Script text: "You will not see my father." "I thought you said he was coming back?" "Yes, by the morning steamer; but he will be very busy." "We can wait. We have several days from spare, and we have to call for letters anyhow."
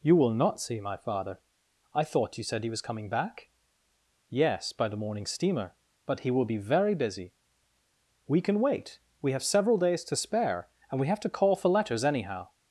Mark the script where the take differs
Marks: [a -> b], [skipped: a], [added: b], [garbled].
"You will not see my father." "I thought you said he was coming back?" "Yes, by the morning steamer; but he will be very busy." "We can wait. We have several days [from -> to] spare, and we have to call for letters anyhow."